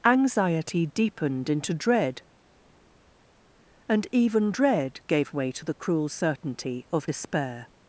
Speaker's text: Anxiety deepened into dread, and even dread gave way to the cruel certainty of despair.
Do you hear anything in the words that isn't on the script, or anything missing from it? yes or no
no